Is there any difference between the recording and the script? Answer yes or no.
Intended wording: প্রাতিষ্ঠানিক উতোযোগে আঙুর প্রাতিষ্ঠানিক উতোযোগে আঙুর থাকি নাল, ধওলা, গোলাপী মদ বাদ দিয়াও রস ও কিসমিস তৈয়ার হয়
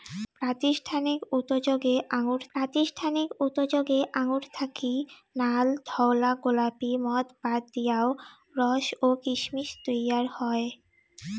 no